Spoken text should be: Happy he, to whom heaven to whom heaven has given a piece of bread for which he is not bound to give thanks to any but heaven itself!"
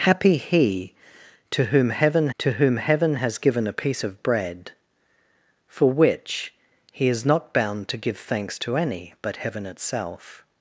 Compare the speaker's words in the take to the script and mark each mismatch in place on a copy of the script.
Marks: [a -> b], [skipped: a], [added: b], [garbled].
Happy he, to whom heaven to whom heaven has given a piece of bread for which he is not bound to give thanks to any but heaven itself!"